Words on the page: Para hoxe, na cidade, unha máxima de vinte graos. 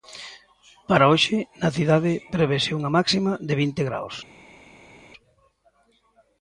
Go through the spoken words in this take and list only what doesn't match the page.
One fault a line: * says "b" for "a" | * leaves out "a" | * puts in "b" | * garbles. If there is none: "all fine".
* puts in "prevese"